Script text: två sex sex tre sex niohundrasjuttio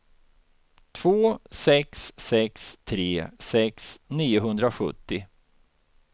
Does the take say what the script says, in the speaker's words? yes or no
yes